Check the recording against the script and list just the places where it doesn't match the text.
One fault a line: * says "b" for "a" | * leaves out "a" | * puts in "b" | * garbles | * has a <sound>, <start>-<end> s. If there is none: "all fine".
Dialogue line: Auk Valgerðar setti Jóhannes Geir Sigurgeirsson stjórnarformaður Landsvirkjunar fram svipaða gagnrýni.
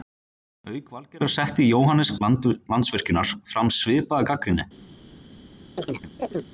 * leaves out "Geir Sigurgeirsson stjórnarformaður"
* has a chirp, 5.8-6.5 s